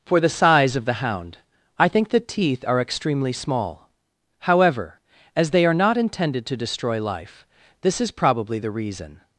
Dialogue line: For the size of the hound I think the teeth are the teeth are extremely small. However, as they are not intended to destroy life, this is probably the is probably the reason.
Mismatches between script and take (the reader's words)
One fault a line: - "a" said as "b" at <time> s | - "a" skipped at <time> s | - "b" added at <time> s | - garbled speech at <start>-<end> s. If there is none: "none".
- "the teeth are" skipped at 2.8 s
- "is probably the" skipped at 8.7 s